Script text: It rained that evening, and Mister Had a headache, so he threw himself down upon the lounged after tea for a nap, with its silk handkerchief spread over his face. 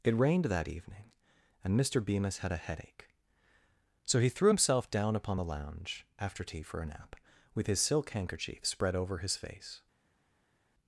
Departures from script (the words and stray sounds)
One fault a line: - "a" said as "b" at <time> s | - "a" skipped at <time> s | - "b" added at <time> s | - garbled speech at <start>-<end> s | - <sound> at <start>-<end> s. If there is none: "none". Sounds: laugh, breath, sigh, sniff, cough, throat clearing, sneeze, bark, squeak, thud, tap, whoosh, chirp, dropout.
- "Bemis" added at 2.0 s
- "lounged" said as "lounge" at 5.4 s
- "its" said as "his" at 7.7 s